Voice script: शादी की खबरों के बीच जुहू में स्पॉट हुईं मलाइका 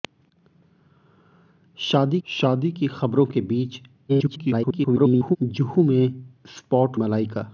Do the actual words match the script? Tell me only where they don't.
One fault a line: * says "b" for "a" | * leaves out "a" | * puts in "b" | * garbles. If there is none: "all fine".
* puts in "शादी"
* garbles
* leaves out "हुईं"